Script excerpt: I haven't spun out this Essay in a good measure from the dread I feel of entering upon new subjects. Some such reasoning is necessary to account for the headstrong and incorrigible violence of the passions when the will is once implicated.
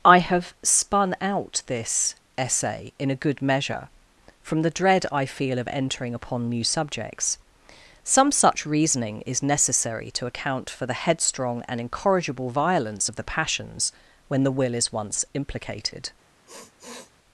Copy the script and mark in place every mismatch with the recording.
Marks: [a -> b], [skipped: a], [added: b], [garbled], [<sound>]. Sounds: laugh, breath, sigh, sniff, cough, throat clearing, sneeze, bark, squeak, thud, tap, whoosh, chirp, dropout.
I [haven't -> have] spun out this Essay in a good measure from the dread I feel of entering upon new subjects. Some such reasoning is necessary to account for the headstrong and incorrigible violence of the passions when the will is once implicated. [sniff]